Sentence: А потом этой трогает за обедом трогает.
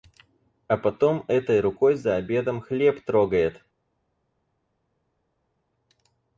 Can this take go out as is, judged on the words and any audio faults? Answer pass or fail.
fail